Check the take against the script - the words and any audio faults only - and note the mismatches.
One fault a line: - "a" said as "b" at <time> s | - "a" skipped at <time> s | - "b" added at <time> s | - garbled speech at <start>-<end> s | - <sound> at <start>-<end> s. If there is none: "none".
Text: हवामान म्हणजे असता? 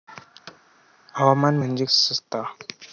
- thud at 0.5-0.6 s